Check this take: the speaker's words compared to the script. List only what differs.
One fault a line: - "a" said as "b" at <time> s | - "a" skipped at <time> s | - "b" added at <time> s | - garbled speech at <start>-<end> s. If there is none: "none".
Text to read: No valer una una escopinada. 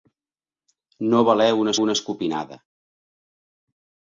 none